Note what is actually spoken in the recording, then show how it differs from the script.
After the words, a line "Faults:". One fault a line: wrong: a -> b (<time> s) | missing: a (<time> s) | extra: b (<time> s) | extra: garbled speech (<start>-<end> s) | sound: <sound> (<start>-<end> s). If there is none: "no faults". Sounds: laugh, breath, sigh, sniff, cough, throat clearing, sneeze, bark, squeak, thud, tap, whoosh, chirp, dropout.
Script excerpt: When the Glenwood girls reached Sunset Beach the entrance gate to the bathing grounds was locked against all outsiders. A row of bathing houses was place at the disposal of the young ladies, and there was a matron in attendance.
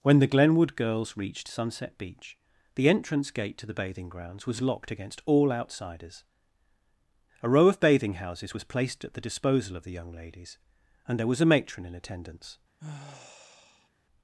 When the Glenwood girls reached Sunset Beach the entrance gate to the bathing grounds was locked against all outsiders. A row of bathing houses was placed at the disposal of the young ladies, and there was a matron in attendance.
Faults:
wrong: place -> placed (8.6 s)
sound: sigh (12.8-13.9 s)